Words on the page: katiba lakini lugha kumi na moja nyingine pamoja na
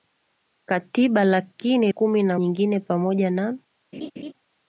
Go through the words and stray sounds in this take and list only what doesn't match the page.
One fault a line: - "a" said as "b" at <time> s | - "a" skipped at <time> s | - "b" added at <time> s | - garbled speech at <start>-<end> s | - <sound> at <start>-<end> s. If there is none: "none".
- "lugha" skipped at 1.9 s
- "moja" skipped at 2.4 s
- laugh at 3.9-4.3 s